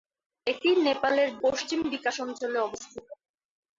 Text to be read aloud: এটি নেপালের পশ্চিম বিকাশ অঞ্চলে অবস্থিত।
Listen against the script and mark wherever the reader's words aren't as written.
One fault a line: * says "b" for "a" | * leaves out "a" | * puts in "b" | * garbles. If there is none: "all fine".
all fine